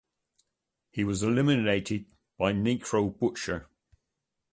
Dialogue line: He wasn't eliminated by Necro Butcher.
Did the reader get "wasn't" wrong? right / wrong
wrong